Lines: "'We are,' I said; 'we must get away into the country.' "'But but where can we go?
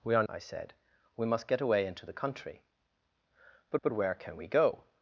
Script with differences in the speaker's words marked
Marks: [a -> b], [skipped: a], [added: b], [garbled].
"'We are,' I said; 'we must get away into the country.' "'But but where can we go?